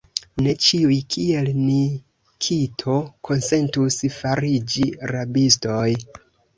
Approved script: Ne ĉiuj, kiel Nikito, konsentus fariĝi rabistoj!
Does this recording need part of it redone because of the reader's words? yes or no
no